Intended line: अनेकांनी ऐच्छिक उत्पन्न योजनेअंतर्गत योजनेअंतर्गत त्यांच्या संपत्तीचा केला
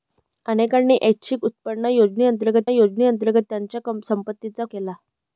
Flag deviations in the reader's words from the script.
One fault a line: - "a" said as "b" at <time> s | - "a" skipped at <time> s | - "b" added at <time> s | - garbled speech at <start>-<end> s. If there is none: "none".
none